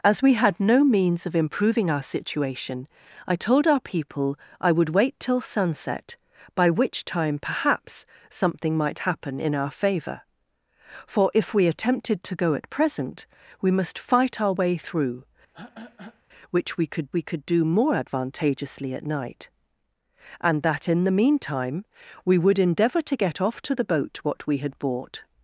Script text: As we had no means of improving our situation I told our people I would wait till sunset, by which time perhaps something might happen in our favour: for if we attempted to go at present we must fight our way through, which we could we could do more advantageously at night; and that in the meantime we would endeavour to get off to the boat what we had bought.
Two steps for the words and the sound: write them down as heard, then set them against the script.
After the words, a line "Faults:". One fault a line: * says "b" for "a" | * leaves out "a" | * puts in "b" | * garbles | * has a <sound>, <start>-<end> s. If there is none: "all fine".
As we had no means of improving our situation I told our people I would wait till sunset, by which time perhaps something might happen in our favour: for if we attempted to go at present we must fight our way through, which we could we could do more advantageously at night; and that in the meantime we would endeavour to get off to the boat what we had bought.
Faults:
* has a throat clearing, 15.5-16.2 s